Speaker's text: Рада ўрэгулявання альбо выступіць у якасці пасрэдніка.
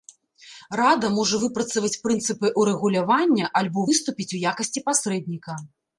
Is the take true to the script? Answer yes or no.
no